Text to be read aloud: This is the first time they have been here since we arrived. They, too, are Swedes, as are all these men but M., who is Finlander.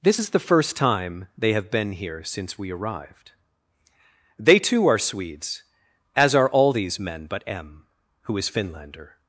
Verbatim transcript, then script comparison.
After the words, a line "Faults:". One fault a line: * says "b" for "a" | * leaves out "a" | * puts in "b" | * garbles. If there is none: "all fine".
This is the first time they have been here since we arrived. They, too, are Swedes, as are all these men but M., who is Finlander.
Faults:
all fine